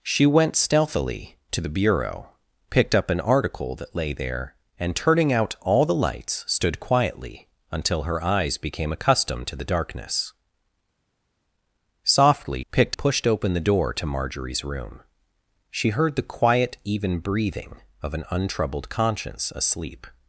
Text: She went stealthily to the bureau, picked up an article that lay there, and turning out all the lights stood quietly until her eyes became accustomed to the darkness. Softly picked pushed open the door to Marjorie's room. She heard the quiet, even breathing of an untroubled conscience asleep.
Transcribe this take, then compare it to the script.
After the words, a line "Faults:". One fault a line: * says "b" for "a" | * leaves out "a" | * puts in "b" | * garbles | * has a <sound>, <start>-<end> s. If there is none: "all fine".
She went stealthily to the bureau, picked up an article that lay there, and turning out all the lights stood quietly until her eyes became accustomed to the darkness. Softly picked pushed open the door to Marjorie's room. She heard the quiet, even breathing of an untroubled conscience asleep.
Faults:
all fine